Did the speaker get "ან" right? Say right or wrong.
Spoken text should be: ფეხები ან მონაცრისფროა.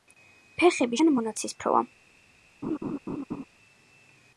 right